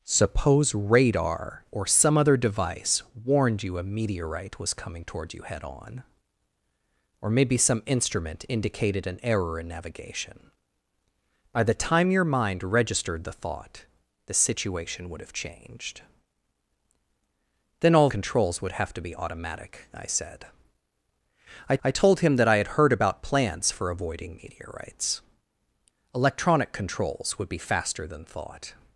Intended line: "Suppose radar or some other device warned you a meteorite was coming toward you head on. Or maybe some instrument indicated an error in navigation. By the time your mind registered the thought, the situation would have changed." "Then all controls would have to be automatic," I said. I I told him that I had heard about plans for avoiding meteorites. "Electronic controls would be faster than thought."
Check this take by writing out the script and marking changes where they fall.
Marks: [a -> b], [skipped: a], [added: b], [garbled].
"Suppose radar or some other device warned you a meteorite was coming toward you head on. Or maybe some instrument indicated an error in navigation. By the time your mind registered the thought, the situation would have changed." "Then all controls would have to be automatic," I said. I I told him that I had heard about plans for avoiding meteorites. "Electronic controls would be faster than thought."